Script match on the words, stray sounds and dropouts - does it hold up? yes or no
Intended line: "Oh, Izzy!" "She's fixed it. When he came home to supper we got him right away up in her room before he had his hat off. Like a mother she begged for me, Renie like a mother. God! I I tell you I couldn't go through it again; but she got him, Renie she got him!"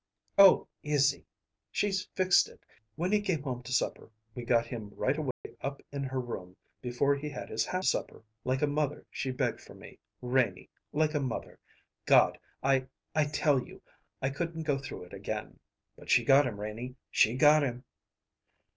no